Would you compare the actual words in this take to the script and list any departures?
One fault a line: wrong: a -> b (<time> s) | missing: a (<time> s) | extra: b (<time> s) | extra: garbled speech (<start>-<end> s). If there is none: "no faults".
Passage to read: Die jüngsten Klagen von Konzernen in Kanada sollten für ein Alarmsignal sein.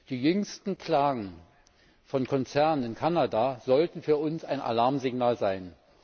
extra: uns (4.2 s)